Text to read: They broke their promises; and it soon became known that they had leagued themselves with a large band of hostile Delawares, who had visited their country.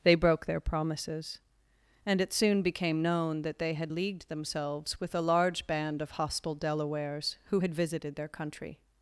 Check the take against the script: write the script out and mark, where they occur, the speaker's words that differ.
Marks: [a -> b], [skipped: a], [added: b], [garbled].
They broke their promises; and it soon became known that they had leagued themselves with a large band of hostile Delawares, who had visited their country.